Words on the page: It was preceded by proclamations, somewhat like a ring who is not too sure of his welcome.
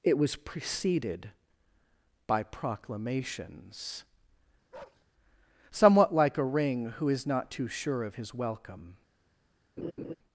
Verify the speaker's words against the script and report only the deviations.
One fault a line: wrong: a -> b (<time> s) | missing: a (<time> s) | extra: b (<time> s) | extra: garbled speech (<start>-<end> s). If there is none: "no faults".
no faults